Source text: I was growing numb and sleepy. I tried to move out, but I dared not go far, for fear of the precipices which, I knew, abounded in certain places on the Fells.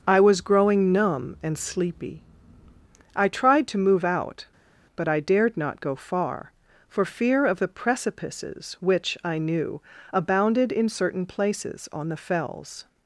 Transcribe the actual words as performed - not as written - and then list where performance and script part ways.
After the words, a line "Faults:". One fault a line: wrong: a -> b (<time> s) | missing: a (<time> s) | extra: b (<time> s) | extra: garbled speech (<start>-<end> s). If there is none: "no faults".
I was growing numb and sleepy. I tried to move out, but I dared not go far, for fear of the precipices which, I knew, abounded in certain places on the Fells.
Faults:
no faults